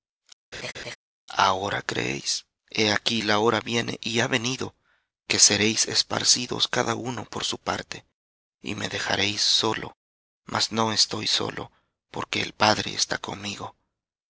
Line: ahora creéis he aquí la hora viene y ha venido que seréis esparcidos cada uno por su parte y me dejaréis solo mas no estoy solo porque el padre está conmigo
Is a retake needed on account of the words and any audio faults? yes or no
yes